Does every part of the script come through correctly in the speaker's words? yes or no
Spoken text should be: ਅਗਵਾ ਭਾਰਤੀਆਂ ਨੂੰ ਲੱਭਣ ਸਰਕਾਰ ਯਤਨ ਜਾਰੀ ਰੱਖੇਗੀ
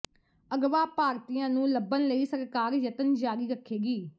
no